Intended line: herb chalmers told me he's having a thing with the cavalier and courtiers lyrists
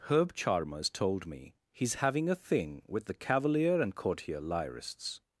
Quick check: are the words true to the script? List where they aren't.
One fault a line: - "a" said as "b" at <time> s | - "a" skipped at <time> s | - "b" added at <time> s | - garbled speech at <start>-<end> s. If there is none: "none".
- "courtiers" said as "courtier" at 3.9 s